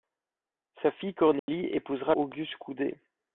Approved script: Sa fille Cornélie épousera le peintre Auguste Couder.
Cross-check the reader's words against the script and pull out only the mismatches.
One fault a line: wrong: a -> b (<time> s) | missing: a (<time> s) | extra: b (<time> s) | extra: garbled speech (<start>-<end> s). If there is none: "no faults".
missing: le peintre (2.1 s)